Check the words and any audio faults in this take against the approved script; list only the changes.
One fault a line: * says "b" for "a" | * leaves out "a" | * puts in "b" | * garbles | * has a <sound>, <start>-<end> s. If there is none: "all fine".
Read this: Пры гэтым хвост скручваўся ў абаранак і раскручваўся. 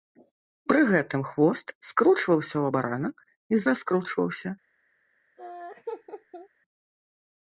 * has a laugh, 5.4-6.5 s